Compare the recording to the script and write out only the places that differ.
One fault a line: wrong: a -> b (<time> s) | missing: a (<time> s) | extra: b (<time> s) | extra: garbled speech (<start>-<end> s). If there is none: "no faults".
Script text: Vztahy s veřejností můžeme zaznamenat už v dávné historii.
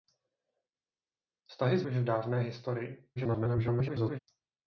missing: veřejností můžeme zaznamenat (1.8 s)
extra: garbled speech (3.2-4.2 s)